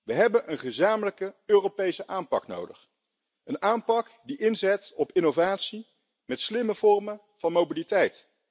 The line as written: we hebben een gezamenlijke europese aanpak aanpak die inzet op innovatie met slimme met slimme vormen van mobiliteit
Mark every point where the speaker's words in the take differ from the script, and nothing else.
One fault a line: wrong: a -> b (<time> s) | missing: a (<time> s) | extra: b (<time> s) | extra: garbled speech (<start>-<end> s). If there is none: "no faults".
extra: nodig een (2.5 s)
missing: met slimme (6.7 s)